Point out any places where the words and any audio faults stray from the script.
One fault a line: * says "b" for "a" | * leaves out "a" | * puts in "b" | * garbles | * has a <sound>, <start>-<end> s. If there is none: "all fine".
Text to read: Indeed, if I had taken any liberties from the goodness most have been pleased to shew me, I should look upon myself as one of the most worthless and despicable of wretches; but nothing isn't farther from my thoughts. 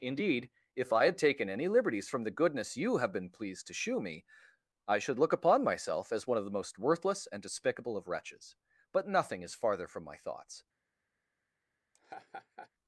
* says "you" for "most"
* says "is" for "isn't"
* has a laugh, 11.9-12.7 s